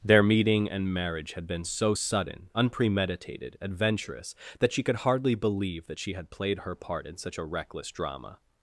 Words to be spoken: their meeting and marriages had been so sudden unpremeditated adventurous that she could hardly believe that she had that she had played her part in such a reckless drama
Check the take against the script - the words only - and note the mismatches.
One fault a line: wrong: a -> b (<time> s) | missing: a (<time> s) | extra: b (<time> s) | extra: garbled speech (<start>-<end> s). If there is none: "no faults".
wrong: marriages -> marriage (0.9 s)
missing: that she had (6.3 s)